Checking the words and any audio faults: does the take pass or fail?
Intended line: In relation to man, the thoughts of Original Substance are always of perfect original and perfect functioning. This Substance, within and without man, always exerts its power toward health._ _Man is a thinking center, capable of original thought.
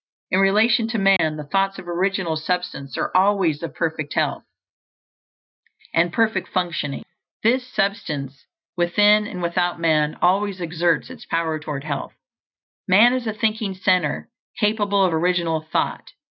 fail